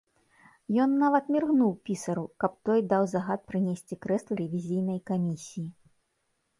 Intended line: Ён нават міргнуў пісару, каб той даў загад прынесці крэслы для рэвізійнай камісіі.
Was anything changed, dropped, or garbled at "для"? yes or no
yes